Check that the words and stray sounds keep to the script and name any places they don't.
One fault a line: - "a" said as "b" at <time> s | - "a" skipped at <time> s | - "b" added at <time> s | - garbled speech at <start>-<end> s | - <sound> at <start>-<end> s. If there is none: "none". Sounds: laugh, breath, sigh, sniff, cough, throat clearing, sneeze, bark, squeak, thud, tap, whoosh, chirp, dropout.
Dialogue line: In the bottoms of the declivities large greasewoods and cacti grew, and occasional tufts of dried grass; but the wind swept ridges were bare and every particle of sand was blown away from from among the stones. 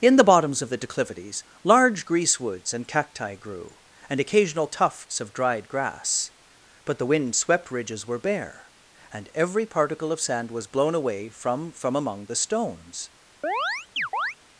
- chirp at 13.4-14.4 s